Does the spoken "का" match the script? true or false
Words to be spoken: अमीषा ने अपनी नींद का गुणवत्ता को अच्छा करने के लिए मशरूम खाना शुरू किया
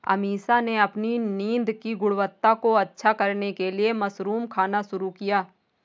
false